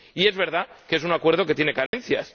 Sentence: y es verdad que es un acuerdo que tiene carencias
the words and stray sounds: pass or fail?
fail